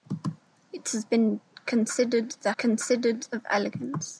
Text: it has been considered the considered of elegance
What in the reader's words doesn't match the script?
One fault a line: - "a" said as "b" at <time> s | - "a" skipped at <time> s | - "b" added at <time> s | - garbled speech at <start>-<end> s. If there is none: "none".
none